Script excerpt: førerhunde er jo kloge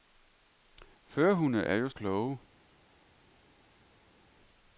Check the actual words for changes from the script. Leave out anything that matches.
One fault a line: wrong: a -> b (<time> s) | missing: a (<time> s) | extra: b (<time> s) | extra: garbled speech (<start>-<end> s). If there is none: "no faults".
no faults